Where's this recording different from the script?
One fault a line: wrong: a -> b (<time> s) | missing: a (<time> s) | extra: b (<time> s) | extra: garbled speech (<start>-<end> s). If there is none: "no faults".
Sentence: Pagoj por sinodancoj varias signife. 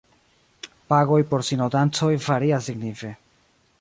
no faults